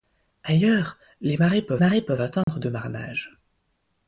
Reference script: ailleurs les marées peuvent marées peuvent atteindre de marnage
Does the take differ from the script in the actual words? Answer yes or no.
no